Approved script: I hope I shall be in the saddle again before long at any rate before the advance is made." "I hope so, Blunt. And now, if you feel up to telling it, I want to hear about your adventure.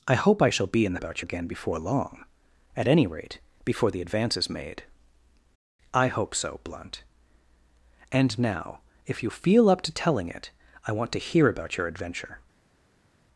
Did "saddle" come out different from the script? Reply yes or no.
yes